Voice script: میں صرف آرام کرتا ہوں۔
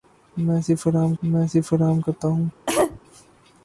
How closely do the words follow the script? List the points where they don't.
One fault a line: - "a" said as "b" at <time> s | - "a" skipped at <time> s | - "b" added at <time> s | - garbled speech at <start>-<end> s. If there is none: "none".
- "میں صرف آرام" added at 1.2 s